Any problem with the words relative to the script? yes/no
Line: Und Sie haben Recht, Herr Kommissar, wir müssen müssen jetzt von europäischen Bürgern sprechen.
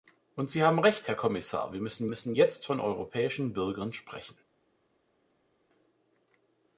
no